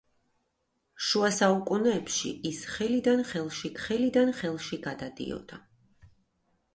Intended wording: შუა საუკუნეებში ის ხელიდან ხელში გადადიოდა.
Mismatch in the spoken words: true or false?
true